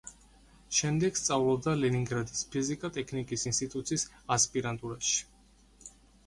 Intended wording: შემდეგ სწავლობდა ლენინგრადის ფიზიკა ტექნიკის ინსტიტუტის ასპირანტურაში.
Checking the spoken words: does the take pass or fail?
pass